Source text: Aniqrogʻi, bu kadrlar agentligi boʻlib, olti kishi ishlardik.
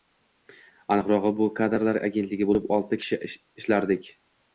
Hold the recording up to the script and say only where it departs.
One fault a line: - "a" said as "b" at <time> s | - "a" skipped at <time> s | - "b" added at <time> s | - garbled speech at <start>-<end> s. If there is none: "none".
none